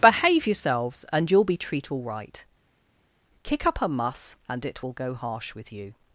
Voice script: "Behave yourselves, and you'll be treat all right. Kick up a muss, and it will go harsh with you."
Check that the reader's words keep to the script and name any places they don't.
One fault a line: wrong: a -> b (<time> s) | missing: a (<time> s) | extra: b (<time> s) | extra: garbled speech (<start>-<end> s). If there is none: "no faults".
no faults